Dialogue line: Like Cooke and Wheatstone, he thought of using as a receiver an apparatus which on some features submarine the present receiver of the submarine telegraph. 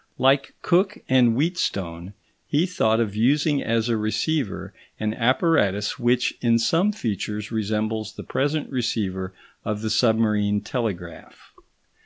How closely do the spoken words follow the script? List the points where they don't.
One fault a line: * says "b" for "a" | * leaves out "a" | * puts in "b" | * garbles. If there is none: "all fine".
* says "in" for "on"
* says "resembles" for "submarine"